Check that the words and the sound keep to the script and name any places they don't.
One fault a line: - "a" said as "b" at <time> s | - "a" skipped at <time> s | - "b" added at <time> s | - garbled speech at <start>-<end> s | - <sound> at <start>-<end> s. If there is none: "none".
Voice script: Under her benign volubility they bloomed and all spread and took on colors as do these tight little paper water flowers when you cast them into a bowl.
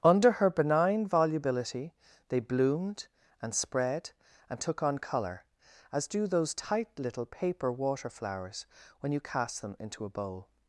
- "all" skipped at 3.5 s
- "colors" said as "color" at 5.0 s
- "these" said as "those" at 6.2 s